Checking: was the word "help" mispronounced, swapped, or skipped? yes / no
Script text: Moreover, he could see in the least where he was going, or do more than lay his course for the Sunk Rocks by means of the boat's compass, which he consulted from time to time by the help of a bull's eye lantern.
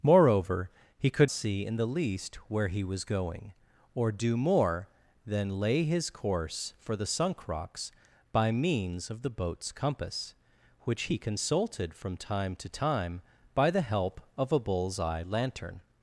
no